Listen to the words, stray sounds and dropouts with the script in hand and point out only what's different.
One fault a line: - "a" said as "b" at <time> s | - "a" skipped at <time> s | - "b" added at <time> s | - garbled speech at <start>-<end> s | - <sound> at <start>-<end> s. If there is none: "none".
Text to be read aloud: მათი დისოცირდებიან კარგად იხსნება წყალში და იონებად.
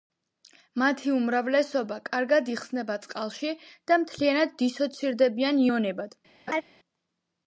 - "დისოცირდებიან" said as "უმრავლესობა" at 1.1 s
- "მთლიანად დისოცირდებიან" added at 4.0 s
- laugh at 6.5-6.6 s